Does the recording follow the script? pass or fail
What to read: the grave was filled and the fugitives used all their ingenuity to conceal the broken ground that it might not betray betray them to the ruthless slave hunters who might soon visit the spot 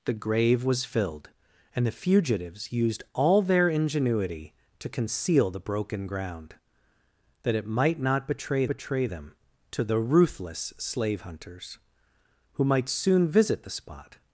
pass